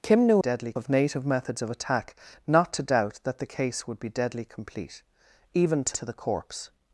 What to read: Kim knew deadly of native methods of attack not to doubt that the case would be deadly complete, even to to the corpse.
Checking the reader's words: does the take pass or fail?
pass